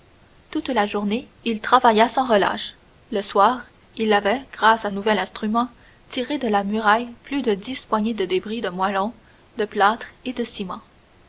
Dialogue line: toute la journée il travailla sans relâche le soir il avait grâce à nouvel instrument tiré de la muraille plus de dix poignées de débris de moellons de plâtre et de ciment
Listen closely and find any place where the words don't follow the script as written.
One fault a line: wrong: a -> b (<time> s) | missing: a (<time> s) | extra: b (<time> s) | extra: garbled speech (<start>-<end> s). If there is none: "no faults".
no faults